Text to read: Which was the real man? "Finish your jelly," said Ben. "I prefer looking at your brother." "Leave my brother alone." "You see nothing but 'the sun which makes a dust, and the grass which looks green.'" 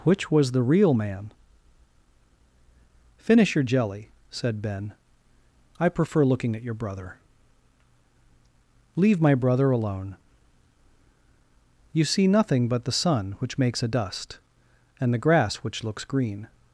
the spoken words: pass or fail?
pass